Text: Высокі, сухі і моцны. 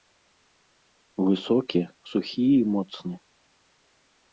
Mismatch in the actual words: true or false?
false